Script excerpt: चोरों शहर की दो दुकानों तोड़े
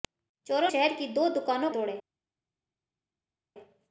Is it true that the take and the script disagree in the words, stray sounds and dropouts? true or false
false